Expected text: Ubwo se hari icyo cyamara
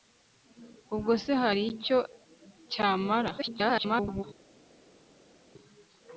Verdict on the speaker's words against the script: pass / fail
fail